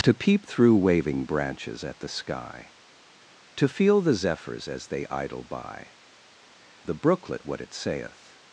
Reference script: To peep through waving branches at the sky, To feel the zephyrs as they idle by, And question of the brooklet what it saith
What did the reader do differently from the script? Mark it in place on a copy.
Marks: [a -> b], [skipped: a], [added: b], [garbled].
To peep through waving branches at the sky, To feel the zephyrs as they idle by, [skipped: And question of] the brooklet what it saith